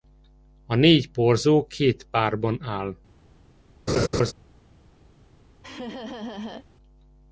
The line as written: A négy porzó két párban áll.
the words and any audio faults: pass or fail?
fail